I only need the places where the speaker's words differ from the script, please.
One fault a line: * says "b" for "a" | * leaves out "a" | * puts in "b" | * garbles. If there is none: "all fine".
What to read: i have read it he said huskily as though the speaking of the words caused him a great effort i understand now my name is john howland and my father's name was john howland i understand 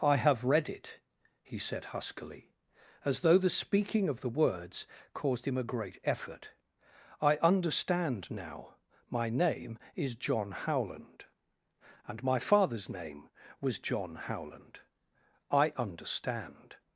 all fine